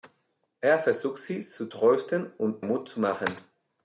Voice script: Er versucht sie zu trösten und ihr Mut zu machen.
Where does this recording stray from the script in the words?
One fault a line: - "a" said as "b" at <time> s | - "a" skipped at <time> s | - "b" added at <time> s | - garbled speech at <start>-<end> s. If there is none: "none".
- "ihr" skipped at 2.6 s